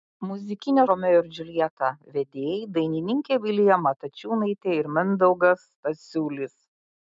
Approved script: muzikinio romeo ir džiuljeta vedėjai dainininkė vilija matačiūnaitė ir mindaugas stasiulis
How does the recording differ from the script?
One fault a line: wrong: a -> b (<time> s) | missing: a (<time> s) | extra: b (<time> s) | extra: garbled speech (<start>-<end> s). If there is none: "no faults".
no faults